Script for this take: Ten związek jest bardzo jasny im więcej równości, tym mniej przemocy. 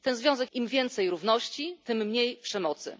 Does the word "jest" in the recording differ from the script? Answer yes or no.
yes